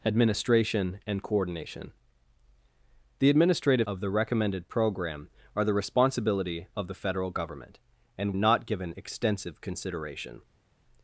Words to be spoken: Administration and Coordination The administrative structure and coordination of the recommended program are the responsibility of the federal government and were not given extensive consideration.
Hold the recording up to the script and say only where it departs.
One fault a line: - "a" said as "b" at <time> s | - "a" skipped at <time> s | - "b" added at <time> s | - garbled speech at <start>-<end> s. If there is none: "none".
- "structure and coordination" skipped at 3.9 s
- "were" skipped at 8.4 s